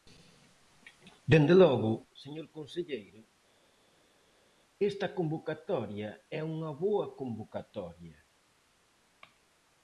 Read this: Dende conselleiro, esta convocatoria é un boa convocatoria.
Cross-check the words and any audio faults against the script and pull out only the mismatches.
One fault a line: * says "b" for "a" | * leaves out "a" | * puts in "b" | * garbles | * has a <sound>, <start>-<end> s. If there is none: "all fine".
* puts in "logo señor"
* says "unha" for "un"